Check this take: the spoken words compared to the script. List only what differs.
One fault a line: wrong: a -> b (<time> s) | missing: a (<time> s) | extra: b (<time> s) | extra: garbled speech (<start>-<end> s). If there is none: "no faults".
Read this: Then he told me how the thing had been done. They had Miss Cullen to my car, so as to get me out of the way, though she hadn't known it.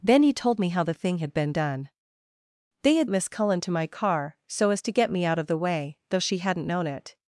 no faults